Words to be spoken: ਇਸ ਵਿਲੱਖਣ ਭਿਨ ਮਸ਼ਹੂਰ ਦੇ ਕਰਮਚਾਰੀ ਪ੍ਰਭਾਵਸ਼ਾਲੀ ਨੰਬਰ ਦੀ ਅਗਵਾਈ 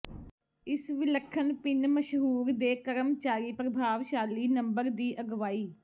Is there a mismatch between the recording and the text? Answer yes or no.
no